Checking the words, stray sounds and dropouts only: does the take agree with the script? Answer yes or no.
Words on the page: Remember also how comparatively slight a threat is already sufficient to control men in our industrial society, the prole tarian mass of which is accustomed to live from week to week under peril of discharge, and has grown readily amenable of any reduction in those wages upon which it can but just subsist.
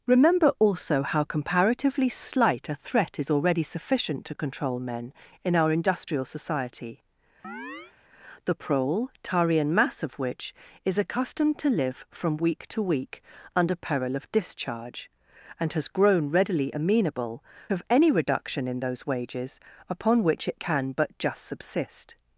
no